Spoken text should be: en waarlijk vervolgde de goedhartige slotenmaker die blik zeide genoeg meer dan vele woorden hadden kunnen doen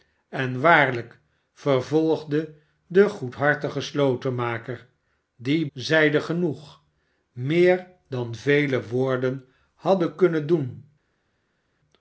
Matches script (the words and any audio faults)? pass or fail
fail